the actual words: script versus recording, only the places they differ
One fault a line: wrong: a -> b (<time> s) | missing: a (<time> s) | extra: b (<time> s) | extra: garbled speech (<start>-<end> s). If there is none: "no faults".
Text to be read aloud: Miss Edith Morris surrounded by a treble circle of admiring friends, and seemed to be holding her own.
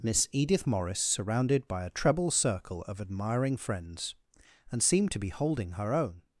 no faults